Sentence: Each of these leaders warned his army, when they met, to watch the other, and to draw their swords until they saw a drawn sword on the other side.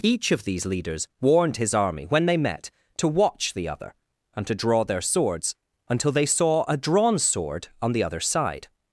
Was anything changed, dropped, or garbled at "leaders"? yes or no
no